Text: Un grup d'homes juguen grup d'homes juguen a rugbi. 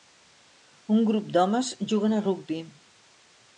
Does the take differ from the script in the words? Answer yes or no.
yes